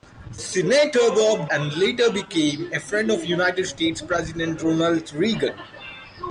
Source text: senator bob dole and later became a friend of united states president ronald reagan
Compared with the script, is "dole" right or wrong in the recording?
wrong